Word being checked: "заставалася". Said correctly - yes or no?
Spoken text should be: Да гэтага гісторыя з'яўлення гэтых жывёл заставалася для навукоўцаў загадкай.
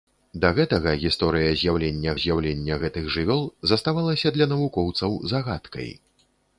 yes